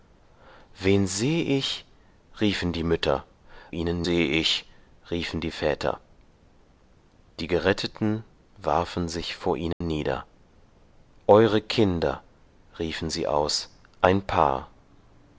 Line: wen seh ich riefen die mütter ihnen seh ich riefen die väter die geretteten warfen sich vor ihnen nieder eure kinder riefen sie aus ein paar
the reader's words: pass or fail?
pass